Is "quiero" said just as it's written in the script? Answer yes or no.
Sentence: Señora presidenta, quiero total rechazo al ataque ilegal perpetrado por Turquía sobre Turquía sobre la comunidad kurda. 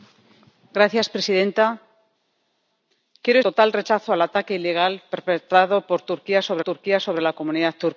yes